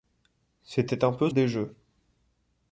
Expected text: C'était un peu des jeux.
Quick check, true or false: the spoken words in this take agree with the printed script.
true